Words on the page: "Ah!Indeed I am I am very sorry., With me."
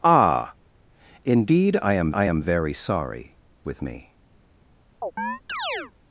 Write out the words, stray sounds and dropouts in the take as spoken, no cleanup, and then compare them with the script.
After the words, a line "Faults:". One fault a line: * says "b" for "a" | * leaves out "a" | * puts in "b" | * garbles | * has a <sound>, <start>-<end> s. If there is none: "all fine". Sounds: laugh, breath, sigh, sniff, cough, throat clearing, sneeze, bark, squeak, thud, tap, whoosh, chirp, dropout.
"Ah!Indeed I am I am very sorry., With me."
Faults:
* has a chirp, 5.0-5.9 s